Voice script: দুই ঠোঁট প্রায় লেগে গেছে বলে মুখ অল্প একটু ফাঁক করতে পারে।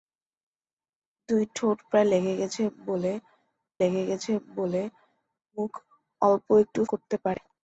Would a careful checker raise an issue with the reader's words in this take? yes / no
yes